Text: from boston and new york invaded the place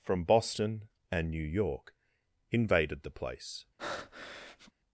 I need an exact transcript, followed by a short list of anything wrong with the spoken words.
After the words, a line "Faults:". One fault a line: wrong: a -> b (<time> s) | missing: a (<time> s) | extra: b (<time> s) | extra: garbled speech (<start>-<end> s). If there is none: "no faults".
from boston and new york invaded the place
Faults:
no faults